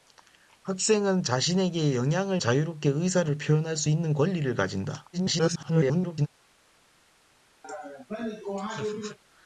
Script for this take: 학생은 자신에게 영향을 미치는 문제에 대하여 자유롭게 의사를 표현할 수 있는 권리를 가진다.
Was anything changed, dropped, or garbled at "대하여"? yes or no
yes